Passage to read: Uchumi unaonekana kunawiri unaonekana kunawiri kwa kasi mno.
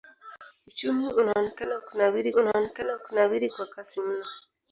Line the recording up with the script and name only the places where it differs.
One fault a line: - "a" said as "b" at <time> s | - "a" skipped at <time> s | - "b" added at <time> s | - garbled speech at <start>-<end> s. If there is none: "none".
none